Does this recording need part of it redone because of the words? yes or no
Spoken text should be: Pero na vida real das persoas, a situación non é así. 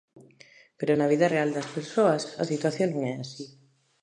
no